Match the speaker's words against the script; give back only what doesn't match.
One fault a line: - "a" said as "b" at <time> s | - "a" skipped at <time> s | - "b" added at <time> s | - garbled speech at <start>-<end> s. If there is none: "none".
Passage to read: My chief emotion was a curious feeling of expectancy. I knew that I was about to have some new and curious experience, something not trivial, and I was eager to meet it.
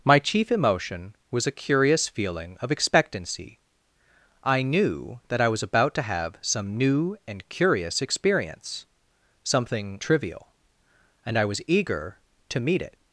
- "not" skipped at 10.0 s